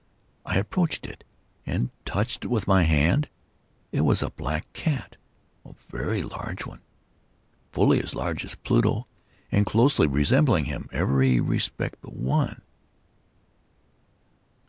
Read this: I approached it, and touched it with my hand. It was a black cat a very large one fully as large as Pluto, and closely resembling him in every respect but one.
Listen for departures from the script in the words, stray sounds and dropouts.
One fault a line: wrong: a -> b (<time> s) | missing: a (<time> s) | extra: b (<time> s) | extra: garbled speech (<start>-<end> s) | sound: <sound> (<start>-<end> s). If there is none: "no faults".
no faults